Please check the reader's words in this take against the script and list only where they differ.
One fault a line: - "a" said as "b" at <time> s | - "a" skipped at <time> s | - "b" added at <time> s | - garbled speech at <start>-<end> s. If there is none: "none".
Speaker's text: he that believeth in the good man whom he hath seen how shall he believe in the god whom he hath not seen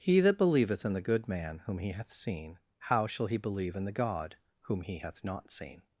none